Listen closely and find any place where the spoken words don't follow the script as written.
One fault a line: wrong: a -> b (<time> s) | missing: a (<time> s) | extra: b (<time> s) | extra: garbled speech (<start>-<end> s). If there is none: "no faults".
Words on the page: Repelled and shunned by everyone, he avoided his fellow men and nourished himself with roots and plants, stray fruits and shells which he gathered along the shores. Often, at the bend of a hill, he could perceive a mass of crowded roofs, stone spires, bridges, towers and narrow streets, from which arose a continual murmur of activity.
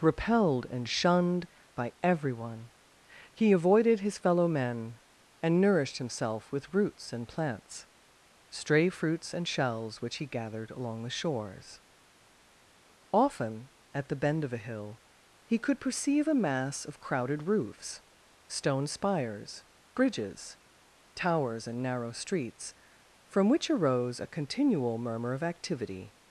no faults